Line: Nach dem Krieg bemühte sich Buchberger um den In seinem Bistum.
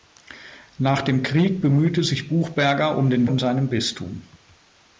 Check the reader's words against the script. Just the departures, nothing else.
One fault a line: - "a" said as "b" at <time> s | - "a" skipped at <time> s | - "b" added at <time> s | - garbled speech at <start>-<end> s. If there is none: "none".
none